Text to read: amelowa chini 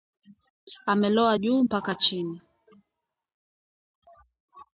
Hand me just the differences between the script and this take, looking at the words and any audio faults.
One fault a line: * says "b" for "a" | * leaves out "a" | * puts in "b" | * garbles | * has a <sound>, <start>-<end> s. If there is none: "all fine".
* puts in "juu mpaka"